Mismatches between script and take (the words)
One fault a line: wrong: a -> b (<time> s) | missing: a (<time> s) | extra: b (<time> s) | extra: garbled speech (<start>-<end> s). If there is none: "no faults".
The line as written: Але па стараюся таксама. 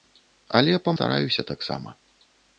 no faults